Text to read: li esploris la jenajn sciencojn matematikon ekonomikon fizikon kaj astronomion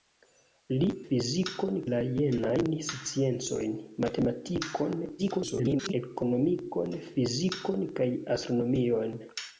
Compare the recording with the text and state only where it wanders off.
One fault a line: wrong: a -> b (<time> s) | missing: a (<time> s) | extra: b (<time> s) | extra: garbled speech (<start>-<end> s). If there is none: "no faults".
wrong: esploris -> fizikon (1.1 s)
extra: garbled speech (5.2-5.9 s)